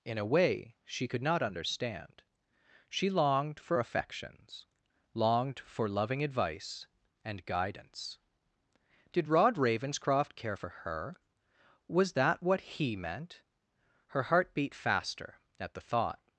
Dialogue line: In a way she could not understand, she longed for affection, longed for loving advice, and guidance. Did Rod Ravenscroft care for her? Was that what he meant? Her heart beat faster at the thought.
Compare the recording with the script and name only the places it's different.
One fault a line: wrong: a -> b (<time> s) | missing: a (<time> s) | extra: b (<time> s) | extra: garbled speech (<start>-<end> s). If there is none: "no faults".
wrong: affection -> affections (3.8 s)